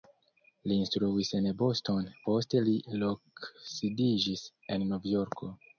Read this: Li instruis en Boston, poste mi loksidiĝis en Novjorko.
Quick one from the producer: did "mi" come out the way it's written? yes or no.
no